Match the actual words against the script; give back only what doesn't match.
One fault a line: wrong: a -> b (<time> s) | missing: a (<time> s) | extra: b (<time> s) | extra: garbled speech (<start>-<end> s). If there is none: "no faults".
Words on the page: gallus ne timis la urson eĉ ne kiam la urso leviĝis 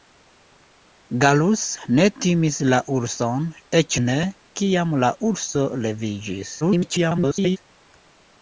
extra: garbled speech (6.6-7.6 s)